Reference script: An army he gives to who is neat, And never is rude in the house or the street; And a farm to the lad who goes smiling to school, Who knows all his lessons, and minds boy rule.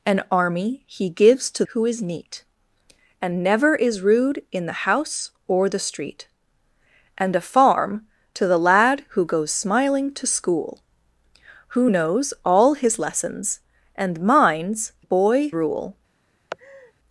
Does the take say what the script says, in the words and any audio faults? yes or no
no